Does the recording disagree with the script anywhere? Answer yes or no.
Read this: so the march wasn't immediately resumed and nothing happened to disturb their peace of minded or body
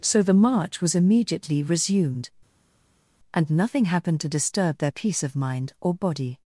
yes